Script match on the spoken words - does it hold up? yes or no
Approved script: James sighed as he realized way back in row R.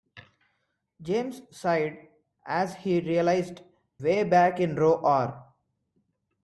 yes